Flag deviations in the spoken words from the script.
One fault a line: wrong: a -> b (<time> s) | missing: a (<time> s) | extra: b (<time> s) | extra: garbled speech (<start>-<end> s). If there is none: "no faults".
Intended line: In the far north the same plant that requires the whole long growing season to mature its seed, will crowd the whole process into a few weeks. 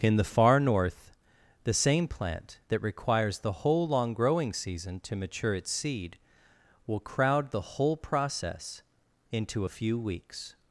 no faults